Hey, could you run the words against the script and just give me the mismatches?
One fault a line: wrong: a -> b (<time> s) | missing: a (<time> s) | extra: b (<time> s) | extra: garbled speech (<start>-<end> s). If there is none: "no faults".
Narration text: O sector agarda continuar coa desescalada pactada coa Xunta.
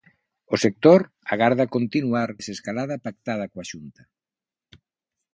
missing: coa (2.3 s)